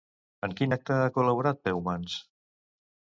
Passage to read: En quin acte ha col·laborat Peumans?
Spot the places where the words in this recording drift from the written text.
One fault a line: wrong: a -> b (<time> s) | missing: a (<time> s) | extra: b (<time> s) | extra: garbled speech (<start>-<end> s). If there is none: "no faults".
no faults